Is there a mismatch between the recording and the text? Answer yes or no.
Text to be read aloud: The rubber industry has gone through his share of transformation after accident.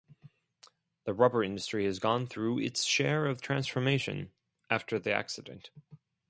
yes